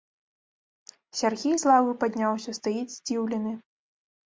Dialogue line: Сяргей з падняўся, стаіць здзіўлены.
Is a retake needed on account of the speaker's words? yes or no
yes